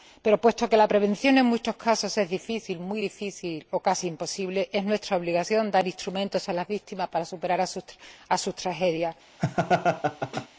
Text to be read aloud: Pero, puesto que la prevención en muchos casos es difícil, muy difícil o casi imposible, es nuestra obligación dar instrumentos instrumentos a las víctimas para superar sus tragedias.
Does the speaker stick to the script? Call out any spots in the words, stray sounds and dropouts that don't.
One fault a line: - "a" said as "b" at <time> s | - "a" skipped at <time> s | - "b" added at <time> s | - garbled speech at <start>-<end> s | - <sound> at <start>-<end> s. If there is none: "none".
- "instrumentos" skipped at 6.5 s
- laugh at 9.4-10.5 s